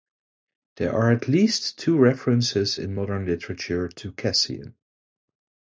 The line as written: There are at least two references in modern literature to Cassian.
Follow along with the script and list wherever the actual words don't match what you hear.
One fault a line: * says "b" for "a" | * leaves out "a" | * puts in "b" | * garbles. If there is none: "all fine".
all fine